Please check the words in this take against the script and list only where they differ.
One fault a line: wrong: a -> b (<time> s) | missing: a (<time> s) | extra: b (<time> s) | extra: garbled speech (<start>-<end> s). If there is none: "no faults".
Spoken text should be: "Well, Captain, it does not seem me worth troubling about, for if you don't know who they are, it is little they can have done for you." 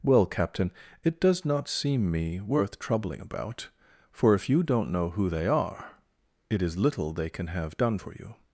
no faults